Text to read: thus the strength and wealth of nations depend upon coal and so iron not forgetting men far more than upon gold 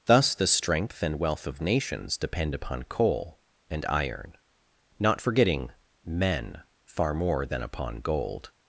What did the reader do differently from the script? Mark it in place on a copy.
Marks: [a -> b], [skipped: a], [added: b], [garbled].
thus the strength and wealth of nations depend upon coal and [skipped: so] iron not forgetting men far more than upon gold